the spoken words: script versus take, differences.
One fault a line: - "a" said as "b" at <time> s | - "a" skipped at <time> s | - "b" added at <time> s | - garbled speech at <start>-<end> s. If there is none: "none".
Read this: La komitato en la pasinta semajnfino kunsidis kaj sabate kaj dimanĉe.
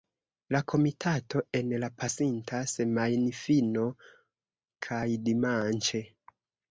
- "kunsidis kaj sabate" skipped at 3.8 s